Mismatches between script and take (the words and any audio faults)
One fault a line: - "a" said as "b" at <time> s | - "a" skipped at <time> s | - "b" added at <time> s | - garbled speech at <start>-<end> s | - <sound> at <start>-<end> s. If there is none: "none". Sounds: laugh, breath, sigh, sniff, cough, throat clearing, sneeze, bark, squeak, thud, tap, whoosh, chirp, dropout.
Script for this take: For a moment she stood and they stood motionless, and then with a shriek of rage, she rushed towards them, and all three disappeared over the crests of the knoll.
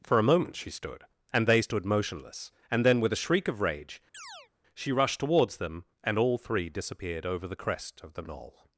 - chirp at 4.1-4.5 s
- "crests" said as "crest" at 7.6 s